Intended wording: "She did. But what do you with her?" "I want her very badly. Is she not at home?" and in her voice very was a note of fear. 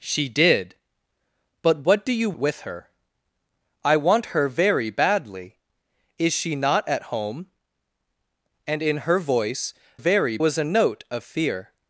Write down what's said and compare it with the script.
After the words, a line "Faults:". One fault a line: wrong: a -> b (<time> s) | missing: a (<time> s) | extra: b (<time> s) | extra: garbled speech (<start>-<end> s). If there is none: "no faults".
"She did. But what do you with her?" "I want her very badly. Is she not at home?" and in her voice very was a note of fear.
Faults:
no faults